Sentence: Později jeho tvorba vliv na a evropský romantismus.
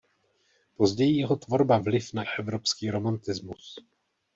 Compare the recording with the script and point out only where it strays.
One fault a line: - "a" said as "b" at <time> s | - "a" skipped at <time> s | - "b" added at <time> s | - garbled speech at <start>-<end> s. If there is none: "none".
none